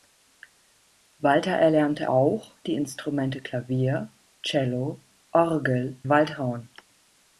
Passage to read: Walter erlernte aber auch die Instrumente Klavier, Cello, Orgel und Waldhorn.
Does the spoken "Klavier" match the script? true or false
true